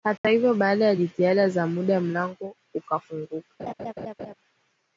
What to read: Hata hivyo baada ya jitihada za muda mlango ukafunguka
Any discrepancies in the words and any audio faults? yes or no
yes